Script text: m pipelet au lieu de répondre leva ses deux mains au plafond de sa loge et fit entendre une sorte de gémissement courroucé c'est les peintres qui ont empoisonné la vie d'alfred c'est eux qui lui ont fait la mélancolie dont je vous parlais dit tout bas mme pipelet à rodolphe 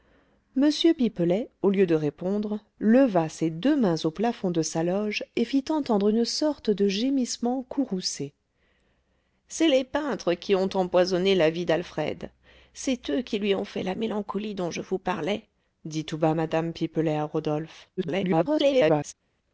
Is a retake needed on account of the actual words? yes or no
yes